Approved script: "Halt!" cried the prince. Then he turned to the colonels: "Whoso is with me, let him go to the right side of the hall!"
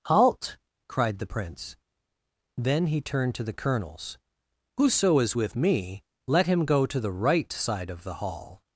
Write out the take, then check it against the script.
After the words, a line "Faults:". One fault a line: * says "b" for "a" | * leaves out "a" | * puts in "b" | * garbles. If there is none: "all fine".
"Halt!" cried the prince. Then he turned to the colonels: "Whoso is with me, let him go to the right side of the hall!"
Faults:
all fine